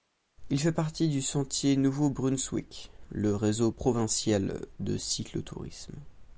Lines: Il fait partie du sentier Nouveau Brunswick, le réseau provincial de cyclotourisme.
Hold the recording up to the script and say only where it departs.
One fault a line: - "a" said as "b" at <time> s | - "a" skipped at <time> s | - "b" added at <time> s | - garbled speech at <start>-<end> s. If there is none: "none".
none